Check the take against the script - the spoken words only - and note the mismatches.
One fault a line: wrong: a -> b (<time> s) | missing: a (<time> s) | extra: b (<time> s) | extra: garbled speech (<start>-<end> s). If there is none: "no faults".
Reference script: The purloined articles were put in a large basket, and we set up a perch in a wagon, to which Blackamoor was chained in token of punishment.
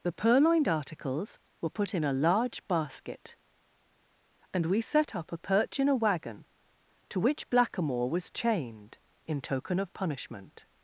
no faults